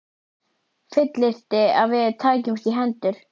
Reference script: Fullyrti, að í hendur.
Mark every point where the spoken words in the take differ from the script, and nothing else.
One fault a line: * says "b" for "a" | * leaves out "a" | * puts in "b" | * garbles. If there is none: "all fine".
* puts in "við tækjumst"